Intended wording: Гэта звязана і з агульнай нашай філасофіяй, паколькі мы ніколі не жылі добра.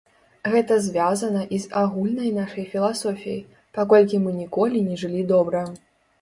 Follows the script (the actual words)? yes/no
yes